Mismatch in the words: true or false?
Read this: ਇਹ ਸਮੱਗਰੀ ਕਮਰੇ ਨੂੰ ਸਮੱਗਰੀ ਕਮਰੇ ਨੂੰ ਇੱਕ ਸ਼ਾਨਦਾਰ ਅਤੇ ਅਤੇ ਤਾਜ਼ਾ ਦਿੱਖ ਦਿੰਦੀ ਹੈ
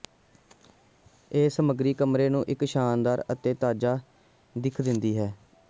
true